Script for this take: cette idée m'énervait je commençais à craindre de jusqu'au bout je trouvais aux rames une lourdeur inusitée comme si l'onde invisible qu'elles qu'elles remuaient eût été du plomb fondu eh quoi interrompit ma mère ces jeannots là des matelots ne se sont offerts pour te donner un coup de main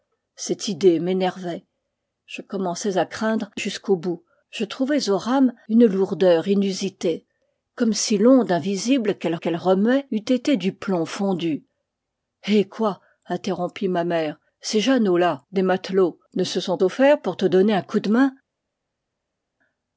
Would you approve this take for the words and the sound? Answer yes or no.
yes